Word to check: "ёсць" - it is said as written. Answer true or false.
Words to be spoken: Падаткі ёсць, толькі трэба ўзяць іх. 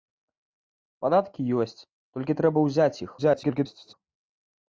true